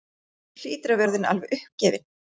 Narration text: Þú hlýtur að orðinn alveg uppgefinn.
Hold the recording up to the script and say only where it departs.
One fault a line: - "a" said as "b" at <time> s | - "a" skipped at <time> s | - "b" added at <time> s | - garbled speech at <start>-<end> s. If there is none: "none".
none